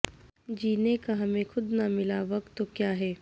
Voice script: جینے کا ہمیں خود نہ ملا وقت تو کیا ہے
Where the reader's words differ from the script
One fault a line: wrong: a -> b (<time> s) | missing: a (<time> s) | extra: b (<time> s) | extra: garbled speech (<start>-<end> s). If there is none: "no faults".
no faults